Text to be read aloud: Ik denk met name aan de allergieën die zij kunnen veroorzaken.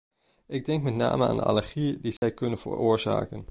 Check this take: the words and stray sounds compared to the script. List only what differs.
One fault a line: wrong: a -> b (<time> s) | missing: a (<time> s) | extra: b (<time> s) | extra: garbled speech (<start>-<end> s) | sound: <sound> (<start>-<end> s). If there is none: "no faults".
sound: dropout (2.2-2.2 s)